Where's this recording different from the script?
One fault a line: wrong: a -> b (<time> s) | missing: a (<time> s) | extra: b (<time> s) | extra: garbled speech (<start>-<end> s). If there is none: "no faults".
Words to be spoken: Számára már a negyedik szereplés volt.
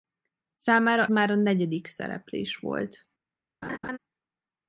no faults